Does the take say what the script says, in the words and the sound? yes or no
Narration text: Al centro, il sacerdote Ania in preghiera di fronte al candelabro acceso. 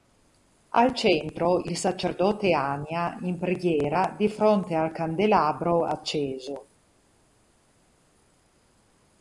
yes